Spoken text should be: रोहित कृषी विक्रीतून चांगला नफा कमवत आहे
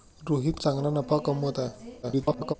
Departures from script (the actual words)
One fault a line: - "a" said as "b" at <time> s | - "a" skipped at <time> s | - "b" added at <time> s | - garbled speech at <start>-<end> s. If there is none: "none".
- "कृषी विक्रीतून" skipped at 0.5 s
- garbled speech at 2.0-2.5 s